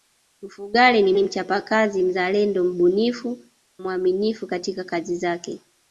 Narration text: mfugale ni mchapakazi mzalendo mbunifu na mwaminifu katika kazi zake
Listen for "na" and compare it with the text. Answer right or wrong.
wrong